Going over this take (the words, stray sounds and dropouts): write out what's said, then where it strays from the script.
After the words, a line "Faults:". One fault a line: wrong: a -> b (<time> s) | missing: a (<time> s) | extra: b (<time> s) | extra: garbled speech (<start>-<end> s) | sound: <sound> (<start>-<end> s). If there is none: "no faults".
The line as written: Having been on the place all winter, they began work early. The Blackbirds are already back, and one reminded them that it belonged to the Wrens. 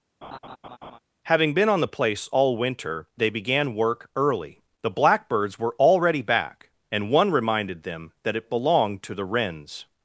Having been on the place all winter, they began work early. The Blackbirds were already back, and one reminded them that it belonged to the Wrens.
Faults:
sound: laugh (0.2-1.0 s)
wrong: are -> were (5.6 s)